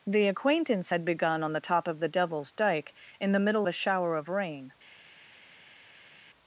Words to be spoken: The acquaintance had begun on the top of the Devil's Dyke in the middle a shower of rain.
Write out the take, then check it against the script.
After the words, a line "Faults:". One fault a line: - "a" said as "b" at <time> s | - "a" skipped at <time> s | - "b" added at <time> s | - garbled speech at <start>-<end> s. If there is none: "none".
The acquaintance had begun on the top of the Devil's Dyke in the middle a shower of rain.
Faults:
none